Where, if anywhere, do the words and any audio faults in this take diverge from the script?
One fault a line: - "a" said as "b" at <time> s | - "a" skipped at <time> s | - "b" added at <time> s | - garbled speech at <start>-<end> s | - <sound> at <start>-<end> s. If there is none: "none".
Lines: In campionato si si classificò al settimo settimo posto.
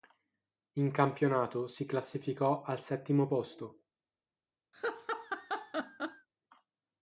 - "si" skipped at 1.9 s
- "settimo" skipped at 3.3 s
- laugh at 4.7-6.3 s